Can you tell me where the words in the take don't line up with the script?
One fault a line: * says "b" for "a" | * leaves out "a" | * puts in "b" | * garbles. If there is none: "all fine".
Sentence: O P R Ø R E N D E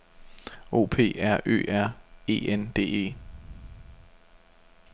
all fine